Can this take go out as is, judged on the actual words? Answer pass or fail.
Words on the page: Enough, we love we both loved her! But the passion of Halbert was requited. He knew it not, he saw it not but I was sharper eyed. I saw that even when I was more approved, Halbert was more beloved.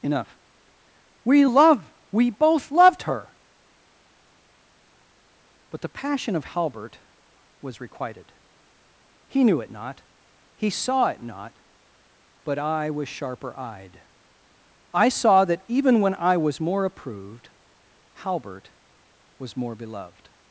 pass